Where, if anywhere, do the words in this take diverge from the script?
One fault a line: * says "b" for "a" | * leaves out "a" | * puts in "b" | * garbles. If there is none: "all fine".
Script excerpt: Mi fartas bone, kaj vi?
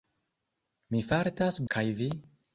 * leaves out "bone"